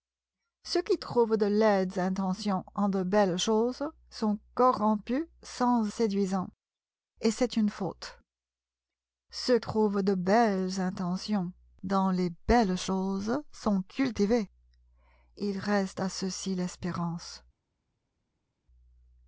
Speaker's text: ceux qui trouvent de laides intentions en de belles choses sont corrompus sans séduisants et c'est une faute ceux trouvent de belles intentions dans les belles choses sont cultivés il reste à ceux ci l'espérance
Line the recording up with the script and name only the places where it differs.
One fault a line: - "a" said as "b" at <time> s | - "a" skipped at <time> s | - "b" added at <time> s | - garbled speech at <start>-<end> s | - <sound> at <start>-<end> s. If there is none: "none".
none